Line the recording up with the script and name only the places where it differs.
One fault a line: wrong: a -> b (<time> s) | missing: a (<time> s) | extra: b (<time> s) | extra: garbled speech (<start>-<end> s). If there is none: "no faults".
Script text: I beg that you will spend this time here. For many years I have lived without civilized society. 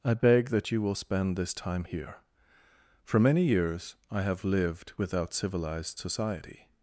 no faults